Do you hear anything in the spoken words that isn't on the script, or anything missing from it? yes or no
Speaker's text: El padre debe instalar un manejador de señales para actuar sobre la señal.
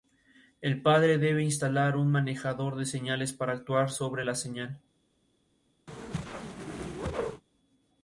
no